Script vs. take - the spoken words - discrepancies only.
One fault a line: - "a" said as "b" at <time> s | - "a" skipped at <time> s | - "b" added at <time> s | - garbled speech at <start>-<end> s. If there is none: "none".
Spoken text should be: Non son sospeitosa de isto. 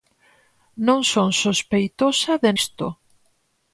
none